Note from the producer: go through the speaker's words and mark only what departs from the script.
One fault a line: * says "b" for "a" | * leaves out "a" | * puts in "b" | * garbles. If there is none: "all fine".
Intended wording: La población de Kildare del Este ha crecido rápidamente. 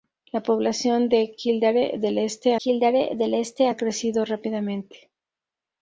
* puts in "Kildare del Este"